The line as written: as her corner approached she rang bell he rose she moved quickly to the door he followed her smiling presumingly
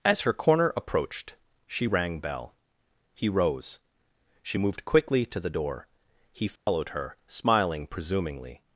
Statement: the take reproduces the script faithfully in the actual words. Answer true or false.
true